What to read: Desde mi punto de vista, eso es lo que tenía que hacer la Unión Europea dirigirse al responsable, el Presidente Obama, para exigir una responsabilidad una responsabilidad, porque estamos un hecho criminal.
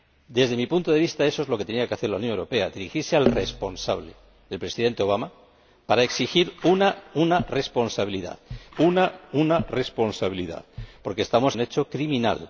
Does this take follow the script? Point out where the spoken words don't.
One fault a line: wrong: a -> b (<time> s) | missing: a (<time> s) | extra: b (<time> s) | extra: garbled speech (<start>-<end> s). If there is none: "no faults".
no faults